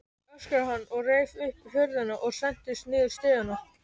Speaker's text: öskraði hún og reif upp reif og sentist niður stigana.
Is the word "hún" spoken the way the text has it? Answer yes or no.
no